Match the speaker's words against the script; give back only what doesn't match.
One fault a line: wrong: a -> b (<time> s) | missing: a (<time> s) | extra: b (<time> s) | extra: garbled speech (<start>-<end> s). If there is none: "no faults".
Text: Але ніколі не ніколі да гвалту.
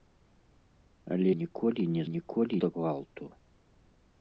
no faults